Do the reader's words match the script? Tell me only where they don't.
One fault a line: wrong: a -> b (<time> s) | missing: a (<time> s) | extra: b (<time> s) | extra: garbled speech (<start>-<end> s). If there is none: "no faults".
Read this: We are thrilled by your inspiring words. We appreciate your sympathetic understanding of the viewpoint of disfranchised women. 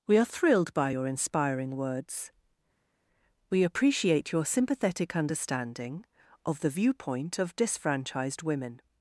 no faults